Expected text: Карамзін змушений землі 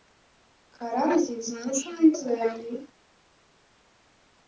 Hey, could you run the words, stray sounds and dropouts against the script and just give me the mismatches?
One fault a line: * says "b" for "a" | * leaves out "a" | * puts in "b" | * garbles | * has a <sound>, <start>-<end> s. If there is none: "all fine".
all fine